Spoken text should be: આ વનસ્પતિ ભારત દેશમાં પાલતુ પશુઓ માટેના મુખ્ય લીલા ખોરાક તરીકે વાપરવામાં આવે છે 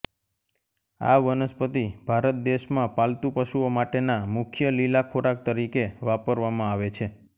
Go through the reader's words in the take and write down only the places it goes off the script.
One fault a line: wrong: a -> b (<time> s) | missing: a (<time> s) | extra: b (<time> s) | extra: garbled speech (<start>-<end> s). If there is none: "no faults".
no faults